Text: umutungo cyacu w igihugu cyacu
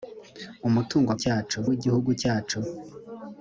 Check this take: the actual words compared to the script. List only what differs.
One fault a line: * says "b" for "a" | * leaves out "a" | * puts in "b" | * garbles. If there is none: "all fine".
all fine